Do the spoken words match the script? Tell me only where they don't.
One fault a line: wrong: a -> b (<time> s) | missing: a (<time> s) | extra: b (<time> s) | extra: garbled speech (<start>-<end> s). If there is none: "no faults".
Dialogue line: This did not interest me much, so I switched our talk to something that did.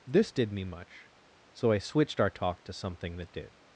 missing: not interest (0.5 s)